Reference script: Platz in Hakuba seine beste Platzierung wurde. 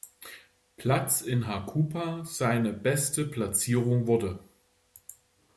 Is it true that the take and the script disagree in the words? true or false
false